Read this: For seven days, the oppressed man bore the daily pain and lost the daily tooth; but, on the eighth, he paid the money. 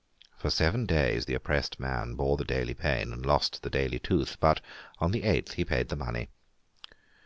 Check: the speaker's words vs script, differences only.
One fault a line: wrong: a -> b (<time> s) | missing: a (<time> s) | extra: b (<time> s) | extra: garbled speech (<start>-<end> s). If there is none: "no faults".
no faults